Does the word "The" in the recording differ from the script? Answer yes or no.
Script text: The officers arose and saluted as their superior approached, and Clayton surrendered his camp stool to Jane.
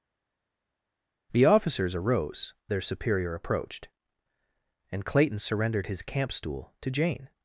no